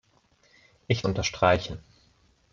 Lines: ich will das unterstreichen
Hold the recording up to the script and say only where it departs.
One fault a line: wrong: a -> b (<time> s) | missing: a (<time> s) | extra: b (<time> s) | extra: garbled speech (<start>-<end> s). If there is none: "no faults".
missing: will das (1.1 s)